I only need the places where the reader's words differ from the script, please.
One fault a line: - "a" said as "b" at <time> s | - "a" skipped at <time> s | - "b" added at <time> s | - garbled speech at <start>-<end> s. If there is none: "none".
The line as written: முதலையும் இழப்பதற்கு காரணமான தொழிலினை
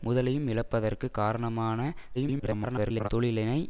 - garbled speech at 2.1-3.1 s